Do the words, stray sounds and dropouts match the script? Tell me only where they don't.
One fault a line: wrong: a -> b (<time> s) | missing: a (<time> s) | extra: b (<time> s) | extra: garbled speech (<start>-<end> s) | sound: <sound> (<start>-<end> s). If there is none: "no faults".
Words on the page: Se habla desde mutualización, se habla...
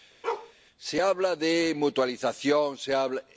sound: bark (0.2-0.5 s)
wrong: desde -> de (1.4 s)